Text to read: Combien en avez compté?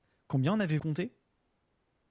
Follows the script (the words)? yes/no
yes